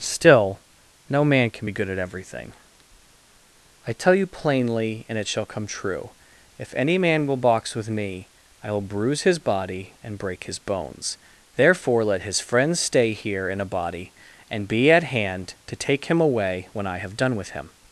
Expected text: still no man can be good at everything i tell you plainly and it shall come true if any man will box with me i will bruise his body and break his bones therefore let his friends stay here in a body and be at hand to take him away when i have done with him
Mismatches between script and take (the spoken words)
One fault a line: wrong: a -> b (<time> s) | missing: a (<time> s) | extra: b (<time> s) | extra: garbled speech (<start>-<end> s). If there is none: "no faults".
no faults